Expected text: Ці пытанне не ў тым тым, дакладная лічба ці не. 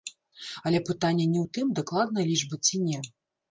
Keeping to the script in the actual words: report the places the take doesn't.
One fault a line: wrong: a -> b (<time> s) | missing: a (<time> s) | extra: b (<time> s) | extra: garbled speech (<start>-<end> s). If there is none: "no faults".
wrong: Ці -> Але (0.7 s)
missing: тым (1.8 s)